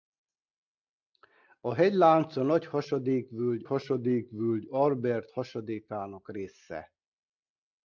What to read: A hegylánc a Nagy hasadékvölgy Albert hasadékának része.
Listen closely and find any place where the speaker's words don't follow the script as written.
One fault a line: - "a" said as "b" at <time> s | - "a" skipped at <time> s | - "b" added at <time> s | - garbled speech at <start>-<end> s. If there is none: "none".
- "hasadékvölgy" added at 3.6 s